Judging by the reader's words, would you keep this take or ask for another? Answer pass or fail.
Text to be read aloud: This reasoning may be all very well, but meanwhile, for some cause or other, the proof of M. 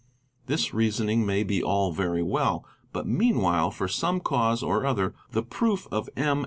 pass